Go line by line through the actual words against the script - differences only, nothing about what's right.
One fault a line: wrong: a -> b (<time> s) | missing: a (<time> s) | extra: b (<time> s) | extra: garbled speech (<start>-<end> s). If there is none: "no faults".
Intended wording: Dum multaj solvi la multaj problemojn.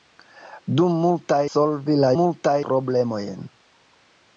no faults